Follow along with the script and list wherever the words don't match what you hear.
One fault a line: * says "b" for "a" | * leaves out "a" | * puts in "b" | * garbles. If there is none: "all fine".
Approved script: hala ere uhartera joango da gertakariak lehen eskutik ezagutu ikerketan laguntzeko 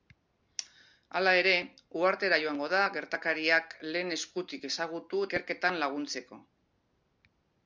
all fine